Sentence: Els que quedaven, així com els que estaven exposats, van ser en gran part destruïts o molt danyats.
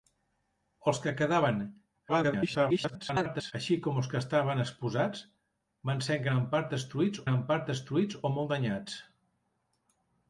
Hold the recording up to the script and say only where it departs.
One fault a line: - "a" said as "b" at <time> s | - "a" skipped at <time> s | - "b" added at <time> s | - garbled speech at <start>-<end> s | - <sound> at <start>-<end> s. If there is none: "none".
- garbled speech at 2.1-3.5 s
- "gran part destruïts" added at 7.3 s